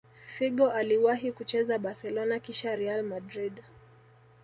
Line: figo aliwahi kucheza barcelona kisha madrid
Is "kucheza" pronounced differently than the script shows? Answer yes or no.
no